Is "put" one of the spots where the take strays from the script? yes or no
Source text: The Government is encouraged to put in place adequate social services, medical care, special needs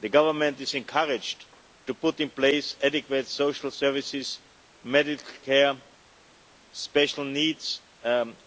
no